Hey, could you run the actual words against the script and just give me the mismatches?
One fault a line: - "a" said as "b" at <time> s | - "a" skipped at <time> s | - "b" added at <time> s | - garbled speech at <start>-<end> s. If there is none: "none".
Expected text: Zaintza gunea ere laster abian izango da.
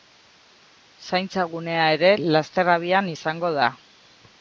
none